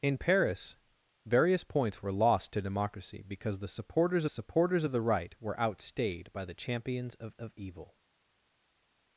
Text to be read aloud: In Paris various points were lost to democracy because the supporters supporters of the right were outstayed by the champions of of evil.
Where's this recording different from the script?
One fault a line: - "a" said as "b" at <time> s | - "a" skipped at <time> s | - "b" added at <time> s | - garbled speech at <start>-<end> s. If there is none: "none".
none